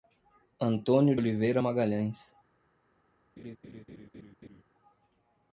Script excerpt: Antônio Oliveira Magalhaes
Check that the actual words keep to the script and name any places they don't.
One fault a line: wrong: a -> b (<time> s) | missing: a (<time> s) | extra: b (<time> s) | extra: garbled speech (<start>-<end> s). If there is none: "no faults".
no faults